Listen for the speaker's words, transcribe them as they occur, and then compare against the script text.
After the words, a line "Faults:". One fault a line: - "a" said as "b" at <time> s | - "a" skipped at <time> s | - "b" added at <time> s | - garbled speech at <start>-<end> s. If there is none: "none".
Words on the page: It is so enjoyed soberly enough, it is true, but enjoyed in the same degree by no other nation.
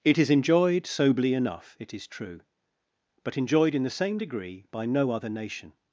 It is enjoyed soberly enough, it is true, but enjoyed in the same degree by no other nation.
Faults:
- "so" skipped at 0.3 s